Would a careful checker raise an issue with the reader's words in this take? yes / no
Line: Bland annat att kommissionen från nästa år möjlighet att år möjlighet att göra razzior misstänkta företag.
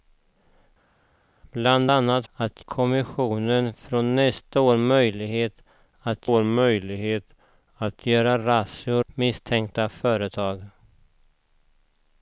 no